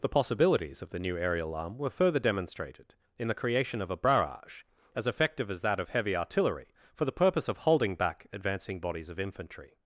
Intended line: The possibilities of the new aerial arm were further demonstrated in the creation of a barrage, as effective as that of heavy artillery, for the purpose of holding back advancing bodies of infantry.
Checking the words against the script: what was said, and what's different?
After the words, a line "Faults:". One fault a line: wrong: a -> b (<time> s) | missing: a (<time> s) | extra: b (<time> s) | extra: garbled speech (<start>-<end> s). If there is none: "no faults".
The possibilities of the new aerial arm were further demonstrated in the creation of a barrage, as effective as that of heavy artillery, for the purpose of holding back advancing bodies of infantry.
Faults:
no faults